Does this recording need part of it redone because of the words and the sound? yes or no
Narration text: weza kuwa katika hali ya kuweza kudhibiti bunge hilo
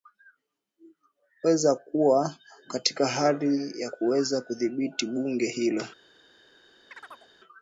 yes